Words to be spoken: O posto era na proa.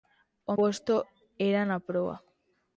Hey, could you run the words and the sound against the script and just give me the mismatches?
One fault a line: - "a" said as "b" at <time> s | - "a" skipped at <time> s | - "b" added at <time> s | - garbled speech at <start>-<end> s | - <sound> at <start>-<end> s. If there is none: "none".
none